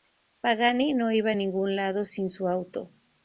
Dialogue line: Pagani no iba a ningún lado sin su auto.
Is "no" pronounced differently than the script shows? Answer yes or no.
no